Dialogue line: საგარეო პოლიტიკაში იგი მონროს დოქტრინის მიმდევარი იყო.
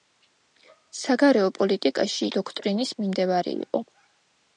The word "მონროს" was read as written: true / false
false